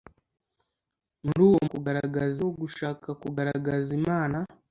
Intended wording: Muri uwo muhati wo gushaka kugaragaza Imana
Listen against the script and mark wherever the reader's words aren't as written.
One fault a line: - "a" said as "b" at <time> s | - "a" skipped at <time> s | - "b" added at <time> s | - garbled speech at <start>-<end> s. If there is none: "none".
- "muhati" said as "kugaragaza" at 1.7 s